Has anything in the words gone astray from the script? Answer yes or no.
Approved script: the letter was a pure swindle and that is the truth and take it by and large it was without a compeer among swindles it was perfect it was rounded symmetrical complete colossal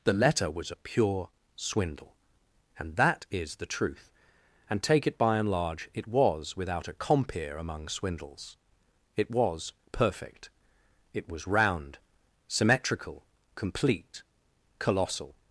yes